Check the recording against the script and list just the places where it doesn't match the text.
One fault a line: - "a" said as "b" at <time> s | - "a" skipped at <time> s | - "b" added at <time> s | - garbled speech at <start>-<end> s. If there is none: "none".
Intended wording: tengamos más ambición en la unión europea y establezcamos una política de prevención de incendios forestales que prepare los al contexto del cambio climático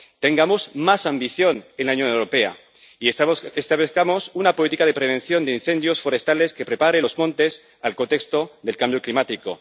- "montes" added at 7.2 s